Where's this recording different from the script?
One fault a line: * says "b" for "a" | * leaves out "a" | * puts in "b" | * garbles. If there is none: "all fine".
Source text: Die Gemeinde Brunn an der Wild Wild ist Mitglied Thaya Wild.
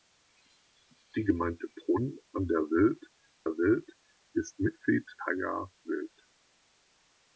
all fine